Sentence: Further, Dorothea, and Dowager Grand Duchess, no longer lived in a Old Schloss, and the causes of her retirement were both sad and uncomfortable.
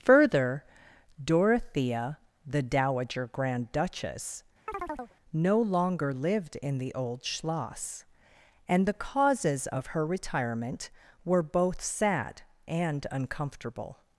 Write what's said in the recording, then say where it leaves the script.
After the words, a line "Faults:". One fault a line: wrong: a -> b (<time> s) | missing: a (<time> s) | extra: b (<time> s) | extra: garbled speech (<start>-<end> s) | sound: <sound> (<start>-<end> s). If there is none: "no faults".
Further, Dorothea, the Dowager Grand Duchess, no longer lived in the Old Schloss, and the causes of her retirement were both sad and uncomfortable.
Faults:
wrong: and -> the (2.5 s)
sound: chirp (4.7-5.1 s)
wrong: a -> the (6.8 s)